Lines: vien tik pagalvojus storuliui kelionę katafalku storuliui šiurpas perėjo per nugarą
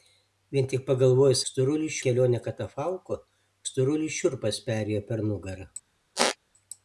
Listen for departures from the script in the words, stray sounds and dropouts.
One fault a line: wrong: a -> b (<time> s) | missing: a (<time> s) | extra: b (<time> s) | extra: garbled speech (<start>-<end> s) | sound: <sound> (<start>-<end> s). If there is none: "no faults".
sound: squeak (6.2-6.4 s)